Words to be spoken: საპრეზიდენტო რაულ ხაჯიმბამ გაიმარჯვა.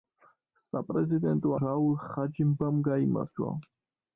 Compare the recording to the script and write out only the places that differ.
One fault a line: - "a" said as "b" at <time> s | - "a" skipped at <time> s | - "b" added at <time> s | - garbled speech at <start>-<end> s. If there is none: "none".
none